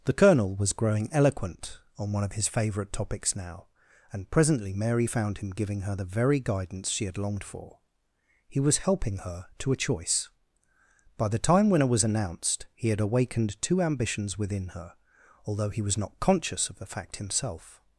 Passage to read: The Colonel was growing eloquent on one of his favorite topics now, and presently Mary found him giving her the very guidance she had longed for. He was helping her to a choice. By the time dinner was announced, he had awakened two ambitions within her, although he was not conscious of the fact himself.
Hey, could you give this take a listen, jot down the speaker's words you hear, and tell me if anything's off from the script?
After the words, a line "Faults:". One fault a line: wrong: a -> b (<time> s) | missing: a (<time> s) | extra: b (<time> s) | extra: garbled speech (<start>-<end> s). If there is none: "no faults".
The Colonel was growing eloquent on one of his favorite topics now, and presently Mary found him giving her the very guidance she had longed for. He was helping her to a choice. By the time winner was announced, he had awakened two ambitions within her, although he was not conscious of the fact himself.
Faults:
wrong: dinner -> winner (11.7 s)